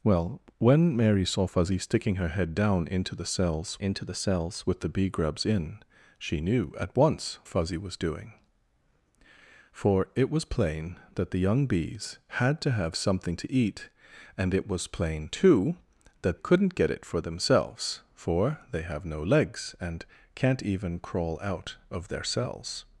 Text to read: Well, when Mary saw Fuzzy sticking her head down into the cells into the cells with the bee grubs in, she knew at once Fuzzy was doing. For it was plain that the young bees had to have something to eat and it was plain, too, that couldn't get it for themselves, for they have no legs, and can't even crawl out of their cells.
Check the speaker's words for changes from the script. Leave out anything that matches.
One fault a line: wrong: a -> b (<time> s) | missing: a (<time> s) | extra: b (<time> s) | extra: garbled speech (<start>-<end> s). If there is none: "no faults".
no faults